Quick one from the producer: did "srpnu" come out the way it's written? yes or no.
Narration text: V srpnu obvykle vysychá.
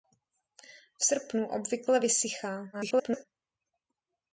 yes